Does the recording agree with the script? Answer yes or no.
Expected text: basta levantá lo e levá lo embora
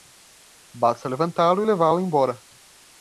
yes